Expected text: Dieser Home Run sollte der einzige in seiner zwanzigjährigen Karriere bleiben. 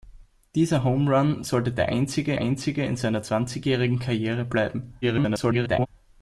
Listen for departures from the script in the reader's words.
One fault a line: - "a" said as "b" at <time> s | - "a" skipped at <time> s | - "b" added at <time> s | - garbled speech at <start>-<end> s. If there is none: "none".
- "einzige" added at 2.4 s
- garbled speech at 5.0-5.9 s